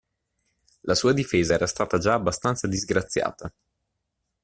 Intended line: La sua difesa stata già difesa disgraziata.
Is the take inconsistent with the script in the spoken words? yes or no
yes